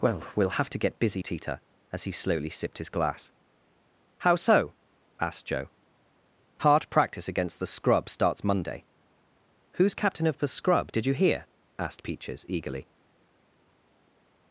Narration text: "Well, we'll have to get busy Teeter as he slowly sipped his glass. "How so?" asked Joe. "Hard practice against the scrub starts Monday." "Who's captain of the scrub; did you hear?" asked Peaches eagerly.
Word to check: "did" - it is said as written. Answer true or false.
true